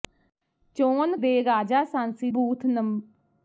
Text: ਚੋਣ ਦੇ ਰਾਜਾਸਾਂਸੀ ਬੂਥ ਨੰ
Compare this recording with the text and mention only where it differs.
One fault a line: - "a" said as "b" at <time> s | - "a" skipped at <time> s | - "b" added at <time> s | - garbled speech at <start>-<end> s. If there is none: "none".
none